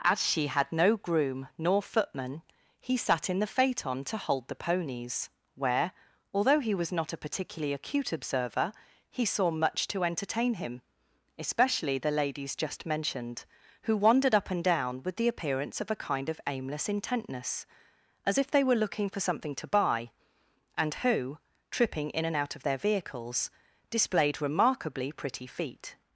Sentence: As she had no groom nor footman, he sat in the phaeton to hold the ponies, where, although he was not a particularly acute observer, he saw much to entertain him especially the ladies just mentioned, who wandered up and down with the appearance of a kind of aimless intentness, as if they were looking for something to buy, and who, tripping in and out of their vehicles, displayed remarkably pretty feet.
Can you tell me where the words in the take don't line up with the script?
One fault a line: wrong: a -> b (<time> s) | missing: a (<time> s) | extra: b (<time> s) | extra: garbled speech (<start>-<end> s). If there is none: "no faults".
no faults